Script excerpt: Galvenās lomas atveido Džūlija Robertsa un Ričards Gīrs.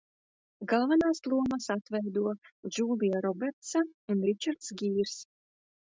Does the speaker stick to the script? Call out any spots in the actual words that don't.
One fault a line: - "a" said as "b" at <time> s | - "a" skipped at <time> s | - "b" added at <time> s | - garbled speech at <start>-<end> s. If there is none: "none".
none